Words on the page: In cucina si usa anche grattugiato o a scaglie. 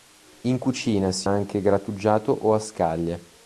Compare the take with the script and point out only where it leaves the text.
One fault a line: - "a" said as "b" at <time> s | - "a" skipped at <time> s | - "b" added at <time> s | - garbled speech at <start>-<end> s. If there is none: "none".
- "usa" skipped at 1.3 s